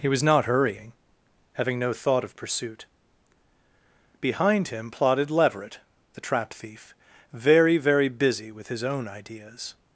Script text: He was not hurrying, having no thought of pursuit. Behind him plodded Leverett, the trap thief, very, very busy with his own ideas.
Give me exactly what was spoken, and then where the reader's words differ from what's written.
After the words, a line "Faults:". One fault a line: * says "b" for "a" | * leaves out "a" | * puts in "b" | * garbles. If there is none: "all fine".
He was not hurrying, having no thought of pursuit. Behind him plodded Leverett, the trap thief, very, very busy with his own ideas.
Faults:
all fine